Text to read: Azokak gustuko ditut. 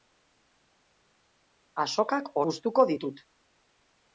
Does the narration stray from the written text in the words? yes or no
no